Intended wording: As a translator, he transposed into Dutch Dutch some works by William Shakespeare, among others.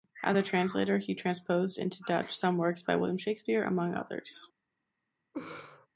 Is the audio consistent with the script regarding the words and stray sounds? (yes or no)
no